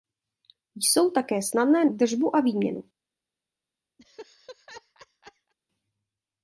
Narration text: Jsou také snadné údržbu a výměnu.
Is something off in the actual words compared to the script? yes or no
no